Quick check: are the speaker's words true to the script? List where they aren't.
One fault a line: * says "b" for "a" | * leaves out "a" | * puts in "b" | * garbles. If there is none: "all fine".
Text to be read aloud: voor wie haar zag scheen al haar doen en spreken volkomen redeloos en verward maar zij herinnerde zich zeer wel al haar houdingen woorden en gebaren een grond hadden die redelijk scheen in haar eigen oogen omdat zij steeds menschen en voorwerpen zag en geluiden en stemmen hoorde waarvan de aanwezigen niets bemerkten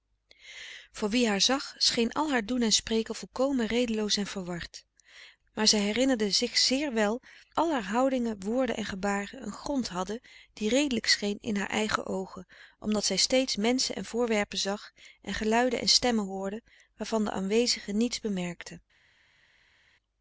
all fine